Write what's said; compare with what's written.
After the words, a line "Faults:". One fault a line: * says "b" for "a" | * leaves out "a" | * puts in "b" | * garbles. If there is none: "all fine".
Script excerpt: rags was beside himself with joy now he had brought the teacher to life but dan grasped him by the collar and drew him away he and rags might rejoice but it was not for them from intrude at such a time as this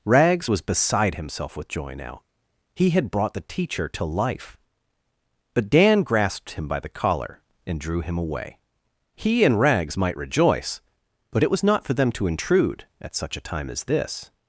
rags was beside himself with joy now he had brought the teacher to life but dan grasped him by the collar and drew him away he and rags might rejoice but it was not for them to intrude at such a time as this
Faults:
* says "to" for "from"